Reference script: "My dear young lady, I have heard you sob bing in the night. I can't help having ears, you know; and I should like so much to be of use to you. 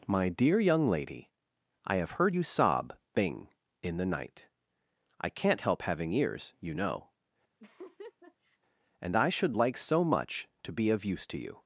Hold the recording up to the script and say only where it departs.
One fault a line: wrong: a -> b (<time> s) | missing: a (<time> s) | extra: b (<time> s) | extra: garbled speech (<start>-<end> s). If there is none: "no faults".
no faults